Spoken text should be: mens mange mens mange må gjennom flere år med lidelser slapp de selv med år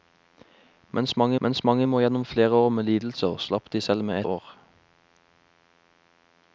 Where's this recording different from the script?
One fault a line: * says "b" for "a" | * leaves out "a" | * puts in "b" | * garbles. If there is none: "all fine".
all fine